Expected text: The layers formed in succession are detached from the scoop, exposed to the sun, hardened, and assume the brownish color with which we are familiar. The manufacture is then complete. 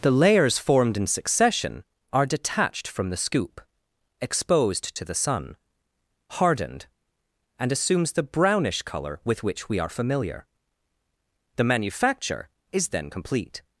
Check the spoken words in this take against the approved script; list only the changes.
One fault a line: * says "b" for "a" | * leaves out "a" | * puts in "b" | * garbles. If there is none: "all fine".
* says "assumes" for "assume"